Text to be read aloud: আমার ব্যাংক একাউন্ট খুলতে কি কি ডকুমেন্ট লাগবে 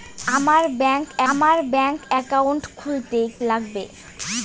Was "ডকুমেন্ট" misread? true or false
true